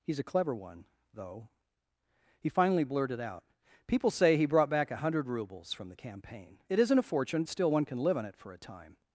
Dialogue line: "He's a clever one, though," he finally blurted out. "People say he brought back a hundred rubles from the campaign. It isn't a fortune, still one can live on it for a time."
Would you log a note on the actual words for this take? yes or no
no